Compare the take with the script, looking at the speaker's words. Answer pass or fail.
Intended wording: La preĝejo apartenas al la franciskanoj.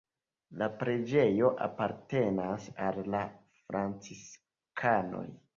pass